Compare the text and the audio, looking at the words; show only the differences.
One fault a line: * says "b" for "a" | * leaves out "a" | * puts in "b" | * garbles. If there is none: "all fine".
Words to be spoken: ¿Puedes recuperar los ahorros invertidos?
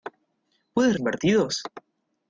* leaves out "recuperar los ahorros"